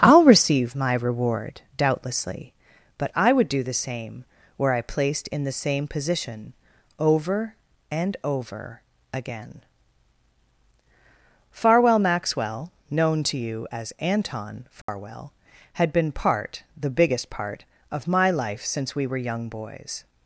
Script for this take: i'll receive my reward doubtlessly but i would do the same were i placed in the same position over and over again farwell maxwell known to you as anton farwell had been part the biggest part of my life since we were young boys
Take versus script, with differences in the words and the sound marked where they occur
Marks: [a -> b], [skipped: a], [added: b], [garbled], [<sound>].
i'll receive my reward doubtlessly but i would do the same were i placed in the same position over and over again farwell maxwell known to you as anton farwell [dropout] had been part the biggest part of my life since we were young boys